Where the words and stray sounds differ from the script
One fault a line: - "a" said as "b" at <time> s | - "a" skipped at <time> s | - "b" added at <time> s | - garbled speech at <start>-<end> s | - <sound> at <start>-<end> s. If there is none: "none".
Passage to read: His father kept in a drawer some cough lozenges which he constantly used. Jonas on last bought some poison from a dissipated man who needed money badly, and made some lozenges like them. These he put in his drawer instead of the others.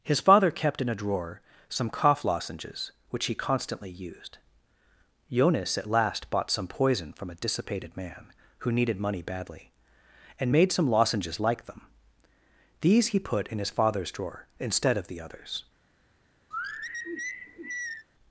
- "on" said as "at" at 5.8 s
- "father's" added at 13.7 s
- sigh at 16.5-18.1 s